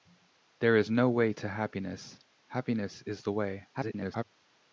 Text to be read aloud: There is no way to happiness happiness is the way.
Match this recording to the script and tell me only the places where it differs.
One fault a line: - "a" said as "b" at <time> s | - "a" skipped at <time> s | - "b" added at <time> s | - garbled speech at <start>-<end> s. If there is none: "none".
- garbled speech at 3.7-4.2 s